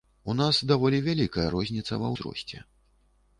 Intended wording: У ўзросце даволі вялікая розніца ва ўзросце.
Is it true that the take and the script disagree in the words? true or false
true